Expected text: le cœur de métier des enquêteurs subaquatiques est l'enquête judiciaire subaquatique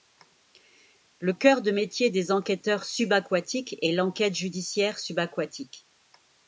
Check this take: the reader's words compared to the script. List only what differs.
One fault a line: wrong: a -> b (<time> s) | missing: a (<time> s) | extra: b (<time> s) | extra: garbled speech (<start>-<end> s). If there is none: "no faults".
no faults